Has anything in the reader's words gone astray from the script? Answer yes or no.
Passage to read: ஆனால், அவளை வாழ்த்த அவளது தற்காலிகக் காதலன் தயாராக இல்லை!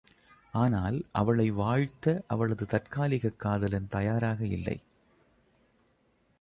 no